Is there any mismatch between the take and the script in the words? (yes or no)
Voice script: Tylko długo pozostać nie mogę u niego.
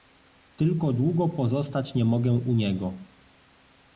no